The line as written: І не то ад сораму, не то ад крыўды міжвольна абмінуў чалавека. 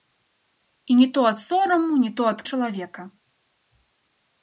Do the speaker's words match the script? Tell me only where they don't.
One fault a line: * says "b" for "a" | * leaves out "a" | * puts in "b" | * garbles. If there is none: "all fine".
* leaves out "крыўды міжвольна абмінуў"